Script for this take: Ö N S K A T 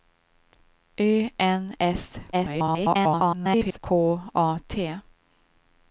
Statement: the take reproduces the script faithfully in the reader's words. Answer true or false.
false